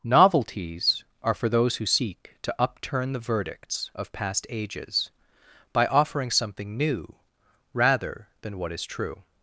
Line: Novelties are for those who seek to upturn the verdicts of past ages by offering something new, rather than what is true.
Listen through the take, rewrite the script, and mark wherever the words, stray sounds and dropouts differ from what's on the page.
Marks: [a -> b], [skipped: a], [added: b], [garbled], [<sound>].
Novelties are for those who seek to upturn the verdicts of past ages by offering something new, rather than what is true.